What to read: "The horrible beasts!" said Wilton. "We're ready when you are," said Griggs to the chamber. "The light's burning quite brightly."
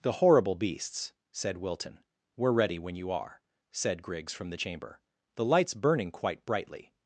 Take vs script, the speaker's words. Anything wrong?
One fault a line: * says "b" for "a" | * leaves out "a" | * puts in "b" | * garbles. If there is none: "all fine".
* says "from" for "to"